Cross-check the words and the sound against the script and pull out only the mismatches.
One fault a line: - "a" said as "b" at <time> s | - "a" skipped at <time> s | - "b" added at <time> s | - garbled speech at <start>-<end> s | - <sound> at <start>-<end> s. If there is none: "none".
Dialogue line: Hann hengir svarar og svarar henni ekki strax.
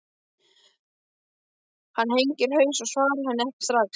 - "svarar" said as "haus" at 2.6 s